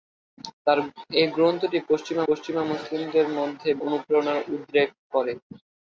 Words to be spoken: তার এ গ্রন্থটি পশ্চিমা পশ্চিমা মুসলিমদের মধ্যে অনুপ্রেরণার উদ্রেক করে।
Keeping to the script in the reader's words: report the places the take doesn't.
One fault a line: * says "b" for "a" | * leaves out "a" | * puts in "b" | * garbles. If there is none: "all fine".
all fine